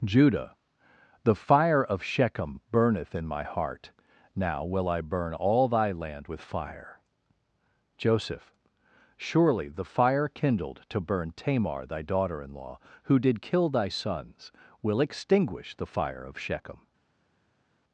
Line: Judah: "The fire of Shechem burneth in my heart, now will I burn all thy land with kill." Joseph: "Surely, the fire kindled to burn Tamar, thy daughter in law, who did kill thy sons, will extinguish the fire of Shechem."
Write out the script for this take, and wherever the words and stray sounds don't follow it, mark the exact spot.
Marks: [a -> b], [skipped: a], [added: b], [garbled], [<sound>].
Judah: "The fire of Shechem burneth in my heart, now will I burn all thy land with [kill." -> fire] Joseph: "Surely, the fire kindled to burn Tamar, thy daughter in law, who did kill thy sons, will extinguish the fire of Shechem."